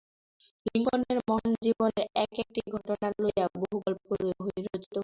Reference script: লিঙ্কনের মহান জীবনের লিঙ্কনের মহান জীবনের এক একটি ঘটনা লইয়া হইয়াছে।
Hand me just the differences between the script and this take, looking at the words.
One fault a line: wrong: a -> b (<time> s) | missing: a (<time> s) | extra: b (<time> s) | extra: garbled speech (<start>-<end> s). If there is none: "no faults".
missing: লিঙ্কনের মহান জীবনের (2.0 s)
extra: বহু গল্প রচিত (3.5 s)